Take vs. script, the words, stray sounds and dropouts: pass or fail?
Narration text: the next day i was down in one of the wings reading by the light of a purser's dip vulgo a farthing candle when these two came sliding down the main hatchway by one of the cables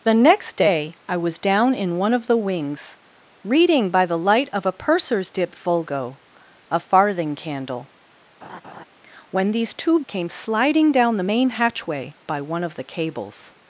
fail